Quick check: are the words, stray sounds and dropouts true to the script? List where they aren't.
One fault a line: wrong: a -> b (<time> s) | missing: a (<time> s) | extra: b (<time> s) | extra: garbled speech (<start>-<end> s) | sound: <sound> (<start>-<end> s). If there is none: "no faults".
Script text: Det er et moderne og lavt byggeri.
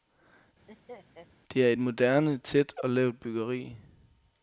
sound: laugh (0.7-1.3 s)
extra: tæt (2.4 s)